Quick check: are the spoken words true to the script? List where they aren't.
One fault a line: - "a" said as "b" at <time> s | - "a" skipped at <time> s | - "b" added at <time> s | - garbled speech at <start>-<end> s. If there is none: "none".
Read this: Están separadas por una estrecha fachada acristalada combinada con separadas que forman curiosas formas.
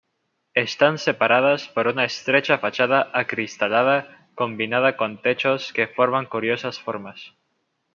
- "separadas" said as "techos" at 5.2 s